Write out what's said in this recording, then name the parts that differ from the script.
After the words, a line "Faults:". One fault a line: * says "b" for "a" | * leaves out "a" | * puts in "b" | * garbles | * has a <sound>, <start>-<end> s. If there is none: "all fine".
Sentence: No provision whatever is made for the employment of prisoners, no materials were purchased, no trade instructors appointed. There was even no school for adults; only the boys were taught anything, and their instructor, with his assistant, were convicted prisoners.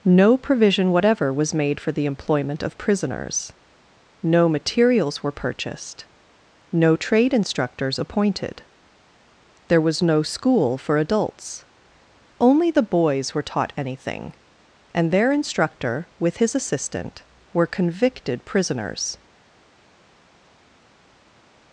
No provision whatever was made for the employment of prisoners, no materials were purchased, no trade instructors appointed. There was no school for adults; only the boys were taught anything, and their instructor, with his assistant, were convicted prisoners.
Faults:
* says "was" for "is"
* leaves out "even"